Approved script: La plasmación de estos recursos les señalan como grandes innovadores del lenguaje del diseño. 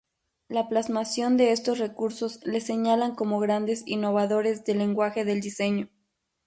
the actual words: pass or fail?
pass